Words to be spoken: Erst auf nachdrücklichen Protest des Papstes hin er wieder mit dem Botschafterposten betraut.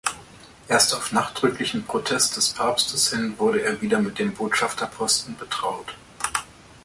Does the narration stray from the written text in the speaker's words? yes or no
yes